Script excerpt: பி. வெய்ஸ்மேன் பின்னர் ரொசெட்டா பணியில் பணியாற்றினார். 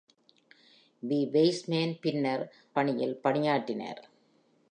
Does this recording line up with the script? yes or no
no